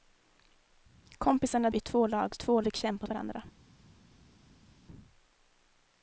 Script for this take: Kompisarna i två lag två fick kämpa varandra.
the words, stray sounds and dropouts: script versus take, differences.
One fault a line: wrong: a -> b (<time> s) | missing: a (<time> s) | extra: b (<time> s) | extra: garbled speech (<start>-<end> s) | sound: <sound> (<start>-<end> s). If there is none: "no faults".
no faults